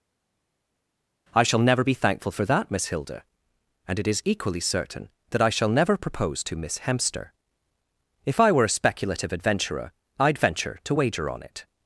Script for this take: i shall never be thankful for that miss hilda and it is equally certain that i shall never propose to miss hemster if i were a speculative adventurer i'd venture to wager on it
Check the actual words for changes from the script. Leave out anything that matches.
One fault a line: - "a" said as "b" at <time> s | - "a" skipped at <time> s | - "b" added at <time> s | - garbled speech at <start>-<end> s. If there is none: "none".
none